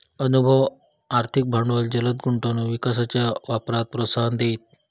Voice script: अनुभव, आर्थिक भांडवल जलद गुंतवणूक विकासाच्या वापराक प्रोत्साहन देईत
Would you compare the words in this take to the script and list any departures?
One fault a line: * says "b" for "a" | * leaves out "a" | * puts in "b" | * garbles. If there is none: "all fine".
all fine